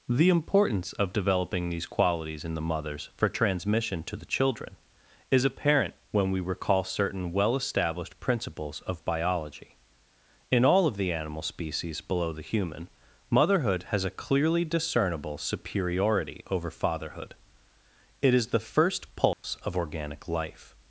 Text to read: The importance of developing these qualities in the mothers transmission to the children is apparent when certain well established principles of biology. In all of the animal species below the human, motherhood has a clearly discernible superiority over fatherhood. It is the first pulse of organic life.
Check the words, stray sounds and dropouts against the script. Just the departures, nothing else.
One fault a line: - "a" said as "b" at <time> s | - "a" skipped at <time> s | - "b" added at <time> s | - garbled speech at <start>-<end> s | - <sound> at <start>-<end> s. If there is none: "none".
- "for" added at 3.1 s
- "we recall" added at 6.3 s
- dropout at 19.3-19.4 s